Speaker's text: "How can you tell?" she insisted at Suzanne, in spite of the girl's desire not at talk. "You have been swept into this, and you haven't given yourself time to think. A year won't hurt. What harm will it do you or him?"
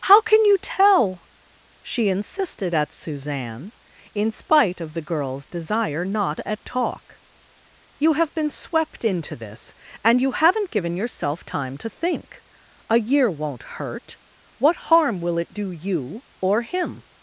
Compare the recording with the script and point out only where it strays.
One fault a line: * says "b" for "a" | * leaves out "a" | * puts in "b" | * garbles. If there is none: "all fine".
all fine